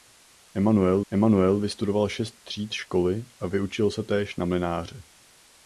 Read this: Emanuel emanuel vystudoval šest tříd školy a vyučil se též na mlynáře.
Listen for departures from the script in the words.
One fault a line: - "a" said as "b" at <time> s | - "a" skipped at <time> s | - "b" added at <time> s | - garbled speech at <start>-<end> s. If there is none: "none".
none